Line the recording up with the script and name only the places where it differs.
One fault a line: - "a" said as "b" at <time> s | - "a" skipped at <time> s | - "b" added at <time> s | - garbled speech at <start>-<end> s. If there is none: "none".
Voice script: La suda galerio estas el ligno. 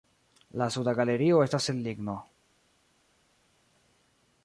none